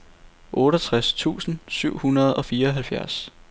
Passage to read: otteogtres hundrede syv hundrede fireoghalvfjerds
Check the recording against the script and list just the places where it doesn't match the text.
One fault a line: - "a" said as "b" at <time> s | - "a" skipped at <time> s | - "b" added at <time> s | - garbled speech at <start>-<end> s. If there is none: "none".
- "hundrede" said as "tusind" at 1.1 s
- "og" added at 2.3 s